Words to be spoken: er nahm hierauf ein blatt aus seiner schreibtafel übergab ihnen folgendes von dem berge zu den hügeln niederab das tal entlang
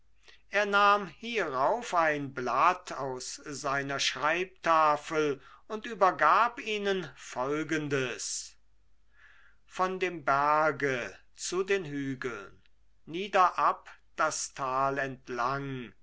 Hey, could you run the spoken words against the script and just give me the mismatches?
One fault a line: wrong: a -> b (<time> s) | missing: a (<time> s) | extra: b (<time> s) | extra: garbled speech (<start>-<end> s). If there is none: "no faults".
extra: und (5.7 s)